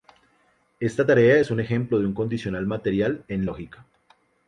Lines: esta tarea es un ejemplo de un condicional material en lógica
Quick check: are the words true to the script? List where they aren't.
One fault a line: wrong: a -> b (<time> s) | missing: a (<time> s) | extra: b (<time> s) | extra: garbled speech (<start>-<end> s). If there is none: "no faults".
no faults